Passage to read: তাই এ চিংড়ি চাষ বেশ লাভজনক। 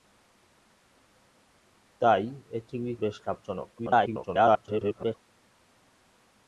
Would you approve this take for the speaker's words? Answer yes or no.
no